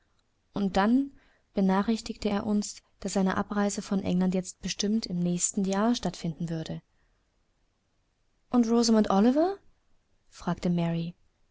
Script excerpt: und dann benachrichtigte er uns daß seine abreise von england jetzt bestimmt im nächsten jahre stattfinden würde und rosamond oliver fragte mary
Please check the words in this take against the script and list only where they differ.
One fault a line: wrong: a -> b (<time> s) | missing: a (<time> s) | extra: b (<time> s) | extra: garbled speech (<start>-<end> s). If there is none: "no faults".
no faults